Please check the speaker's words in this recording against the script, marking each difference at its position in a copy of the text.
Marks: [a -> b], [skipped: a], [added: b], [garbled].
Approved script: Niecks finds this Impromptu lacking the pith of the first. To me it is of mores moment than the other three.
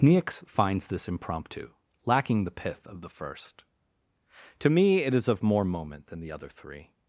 Niecks finds this Impromptu lacking the pith of the first. To me it is of [mores -> more] moment than the other three.